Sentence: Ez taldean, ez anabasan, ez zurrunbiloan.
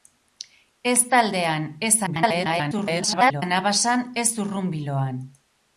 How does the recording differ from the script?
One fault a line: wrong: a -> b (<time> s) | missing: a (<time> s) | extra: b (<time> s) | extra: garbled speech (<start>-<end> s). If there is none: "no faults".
extra: garbled speech (2.1-3.4 s)